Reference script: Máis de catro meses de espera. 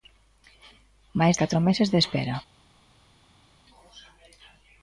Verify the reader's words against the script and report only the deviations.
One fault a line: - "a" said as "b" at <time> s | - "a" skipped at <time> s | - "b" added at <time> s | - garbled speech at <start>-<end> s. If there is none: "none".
- "de" skipped at 1.4 s